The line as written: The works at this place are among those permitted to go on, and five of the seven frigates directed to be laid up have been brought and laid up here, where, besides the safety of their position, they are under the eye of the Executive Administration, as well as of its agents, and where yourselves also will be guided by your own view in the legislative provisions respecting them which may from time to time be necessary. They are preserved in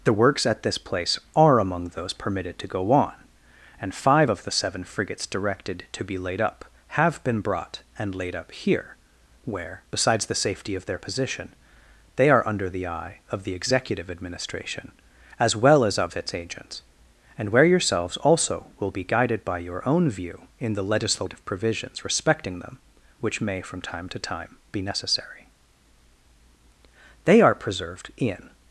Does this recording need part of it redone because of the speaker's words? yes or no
no